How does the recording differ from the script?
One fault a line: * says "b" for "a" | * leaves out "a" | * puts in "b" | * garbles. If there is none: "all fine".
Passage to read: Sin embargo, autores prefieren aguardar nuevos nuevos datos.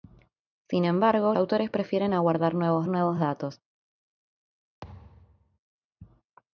all fine